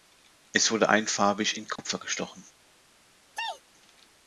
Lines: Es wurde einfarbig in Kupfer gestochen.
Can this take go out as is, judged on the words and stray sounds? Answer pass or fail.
fail